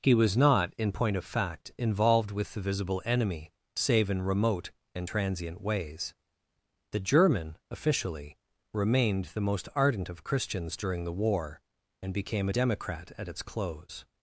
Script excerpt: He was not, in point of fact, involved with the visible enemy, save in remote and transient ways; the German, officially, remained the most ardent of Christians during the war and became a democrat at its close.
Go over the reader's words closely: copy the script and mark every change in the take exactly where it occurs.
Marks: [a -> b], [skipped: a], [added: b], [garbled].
He was not, in point of fact, involved with the visible enemy, save in remote and transient ways; the German, officially, remained the most ardent of Christians during the war and became a democrat at its close.